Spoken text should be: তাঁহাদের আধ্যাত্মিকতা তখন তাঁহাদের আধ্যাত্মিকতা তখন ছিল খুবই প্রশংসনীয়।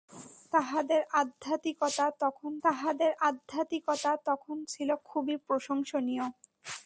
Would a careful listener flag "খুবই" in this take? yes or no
no